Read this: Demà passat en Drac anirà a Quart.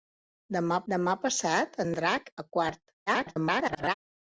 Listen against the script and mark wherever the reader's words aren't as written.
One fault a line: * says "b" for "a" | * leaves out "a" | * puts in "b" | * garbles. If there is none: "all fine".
* puts in "demà"
* leaves out "anirà"
* garbles